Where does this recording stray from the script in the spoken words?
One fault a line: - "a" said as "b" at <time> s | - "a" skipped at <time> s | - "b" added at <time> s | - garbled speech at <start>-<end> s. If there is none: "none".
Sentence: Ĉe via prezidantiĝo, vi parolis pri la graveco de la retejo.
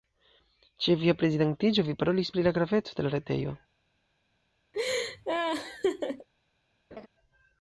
none